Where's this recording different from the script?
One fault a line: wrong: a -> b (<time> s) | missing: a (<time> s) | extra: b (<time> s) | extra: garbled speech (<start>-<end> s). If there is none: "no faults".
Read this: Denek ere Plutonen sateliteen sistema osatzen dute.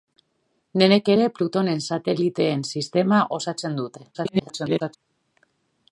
extra: garbled speech (4.1-5.0 s)